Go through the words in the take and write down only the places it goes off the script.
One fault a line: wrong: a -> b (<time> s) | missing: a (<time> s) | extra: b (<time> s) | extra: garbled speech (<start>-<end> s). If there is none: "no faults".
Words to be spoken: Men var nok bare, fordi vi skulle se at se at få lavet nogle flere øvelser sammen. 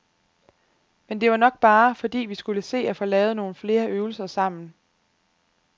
extra: det (1.2 s)
missing: se at (3.0 s)